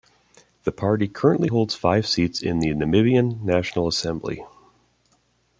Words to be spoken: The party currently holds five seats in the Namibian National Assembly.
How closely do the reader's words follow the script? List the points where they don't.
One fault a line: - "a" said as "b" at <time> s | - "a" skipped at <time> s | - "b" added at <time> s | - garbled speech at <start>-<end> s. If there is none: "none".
none